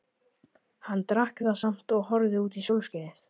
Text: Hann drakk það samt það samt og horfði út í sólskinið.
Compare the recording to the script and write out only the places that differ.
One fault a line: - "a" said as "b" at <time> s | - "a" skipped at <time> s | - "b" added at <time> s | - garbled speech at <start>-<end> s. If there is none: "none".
- "það samt" skipped at 2.0 s